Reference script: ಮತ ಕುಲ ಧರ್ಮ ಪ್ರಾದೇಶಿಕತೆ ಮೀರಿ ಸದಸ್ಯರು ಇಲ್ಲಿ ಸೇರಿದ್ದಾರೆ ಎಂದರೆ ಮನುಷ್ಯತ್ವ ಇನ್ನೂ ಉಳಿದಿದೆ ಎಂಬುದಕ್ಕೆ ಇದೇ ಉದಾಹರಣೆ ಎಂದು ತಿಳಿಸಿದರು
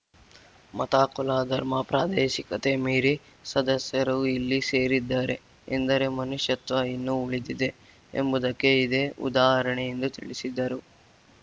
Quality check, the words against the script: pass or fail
pass